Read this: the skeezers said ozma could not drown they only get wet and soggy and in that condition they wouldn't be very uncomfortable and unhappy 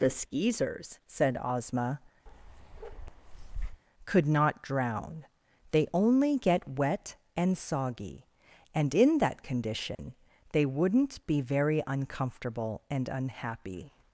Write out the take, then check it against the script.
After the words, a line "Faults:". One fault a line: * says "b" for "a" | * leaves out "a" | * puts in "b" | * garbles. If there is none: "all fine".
the skeezers said ozma could not drown they only get wet and soggy and in that condition they wouldn't be very uncomfortable and unhappy
Faults:
all fine